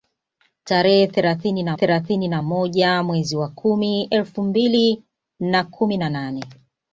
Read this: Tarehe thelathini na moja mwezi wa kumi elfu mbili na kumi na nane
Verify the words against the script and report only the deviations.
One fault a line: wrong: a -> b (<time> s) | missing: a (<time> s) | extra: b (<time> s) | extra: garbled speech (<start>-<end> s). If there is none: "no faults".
extra: thelathini na (1.7 s)